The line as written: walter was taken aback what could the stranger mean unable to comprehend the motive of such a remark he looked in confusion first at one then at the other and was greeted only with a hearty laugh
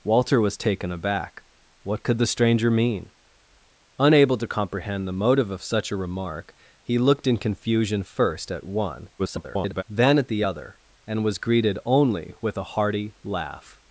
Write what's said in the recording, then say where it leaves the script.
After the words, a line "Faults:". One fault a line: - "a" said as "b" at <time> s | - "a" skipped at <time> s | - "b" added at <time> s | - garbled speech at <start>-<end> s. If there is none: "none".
walter was taken aback what could the stranger mean unable to comprehend the motive of such a remark he looked in confusion first at one [garbled] then at the other and was greeted only with a hearty laugh
Faults:
- garbled speech at 9.2-9.8 s